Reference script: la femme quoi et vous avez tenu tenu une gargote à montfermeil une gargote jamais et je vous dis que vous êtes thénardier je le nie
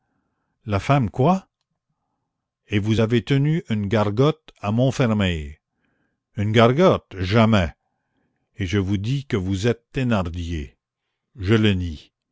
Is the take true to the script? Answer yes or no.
no